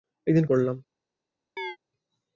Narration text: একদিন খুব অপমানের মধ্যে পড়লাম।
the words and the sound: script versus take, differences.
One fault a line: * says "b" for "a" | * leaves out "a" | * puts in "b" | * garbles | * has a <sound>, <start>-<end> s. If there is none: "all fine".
* leaves out "খুব অপমানের মধ্যে"
* has a chirp, 1.6-1.8 s